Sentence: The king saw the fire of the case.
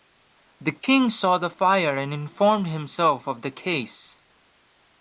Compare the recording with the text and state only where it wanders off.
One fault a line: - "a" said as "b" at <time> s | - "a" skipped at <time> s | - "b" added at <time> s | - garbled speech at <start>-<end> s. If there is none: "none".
- "and informed himself" added at 2.0 s